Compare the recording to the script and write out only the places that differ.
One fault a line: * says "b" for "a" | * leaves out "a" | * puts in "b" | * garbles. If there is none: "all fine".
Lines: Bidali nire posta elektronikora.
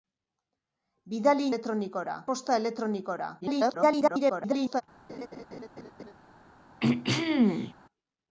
* says "elektronikora" for "nire"
* garbles